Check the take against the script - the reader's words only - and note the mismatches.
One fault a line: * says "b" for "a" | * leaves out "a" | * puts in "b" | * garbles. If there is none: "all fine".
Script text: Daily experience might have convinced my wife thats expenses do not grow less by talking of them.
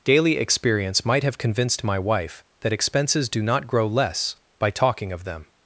* says "that" for "thats"